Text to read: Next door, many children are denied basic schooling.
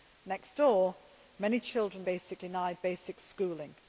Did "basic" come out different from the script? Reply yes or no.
no